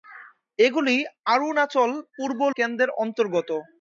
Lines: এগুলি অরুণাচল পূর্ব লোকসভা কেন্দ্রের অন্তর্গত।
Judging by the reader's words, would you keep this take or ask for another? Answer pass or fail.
fail